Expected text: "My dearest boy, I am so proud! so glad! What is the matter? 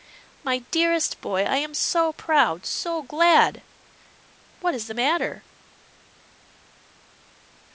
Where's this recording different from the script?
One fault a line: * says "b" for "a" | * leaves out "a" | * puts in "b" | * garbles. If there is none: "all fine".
all fine